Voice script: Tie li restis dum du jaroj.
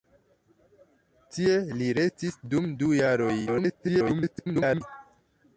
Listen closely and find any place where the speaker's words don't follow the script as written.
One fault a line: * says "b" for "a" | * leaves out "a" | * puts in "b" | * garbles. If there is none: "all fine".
* garbles